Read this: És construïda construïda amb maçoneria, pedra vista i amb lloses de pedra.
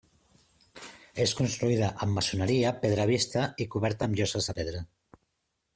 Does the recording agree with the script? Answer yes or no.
no